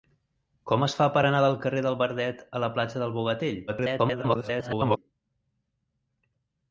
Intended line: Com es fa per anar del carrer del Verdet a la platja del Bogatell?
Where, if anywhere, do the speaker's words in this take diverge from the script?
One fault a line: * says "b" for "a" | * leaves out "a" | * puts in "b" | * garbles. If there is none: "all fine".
* garbles